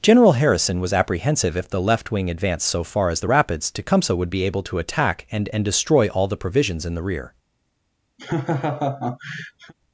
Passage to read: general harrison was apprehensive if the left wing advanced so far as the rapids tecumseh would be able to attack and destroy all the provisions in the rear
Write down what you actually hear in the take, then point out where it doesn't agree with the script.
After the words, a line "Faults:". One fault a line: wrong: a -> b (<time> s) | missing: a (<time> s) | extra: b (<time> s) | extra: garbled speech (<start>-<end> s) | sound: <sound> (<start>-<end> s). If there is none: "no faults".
general harrison was apprehensive if the left wing advanced so far as the rapids tecumseh would be able to attack and and destroy all the provisions in the rear
Faults:
extra: and (5.5 s)
sound: laugh (8.2-9.7 s)